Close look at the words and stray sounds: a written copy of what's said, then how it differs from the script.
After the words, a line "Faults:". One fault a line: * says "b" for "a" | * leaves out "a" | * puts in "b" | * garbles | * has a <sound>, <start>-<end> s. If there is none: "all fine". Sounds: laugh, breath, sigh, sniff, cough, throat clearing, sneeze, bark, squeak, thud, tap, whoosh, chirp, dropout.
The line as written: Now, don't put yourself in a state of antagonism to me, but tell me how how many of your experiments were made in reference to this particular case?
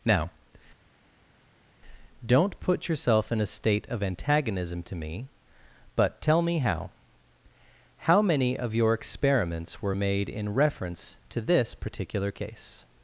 Now, don't put yourself in a state of antagonism to me, but tell me how how many of your experiments were made in reference to this particular case?
Faults:
all fine